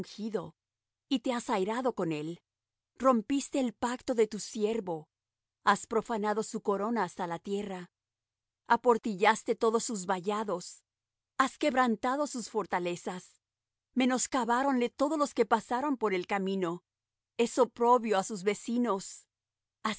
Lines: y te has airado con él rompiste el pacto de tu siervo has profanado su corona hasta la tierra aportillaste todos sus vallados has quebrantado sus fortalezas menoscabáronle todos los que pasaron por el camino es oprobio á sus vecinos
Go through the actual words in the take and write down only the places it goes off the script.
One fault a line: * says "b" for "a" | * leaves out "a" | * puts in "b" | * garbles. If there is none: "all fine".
all fine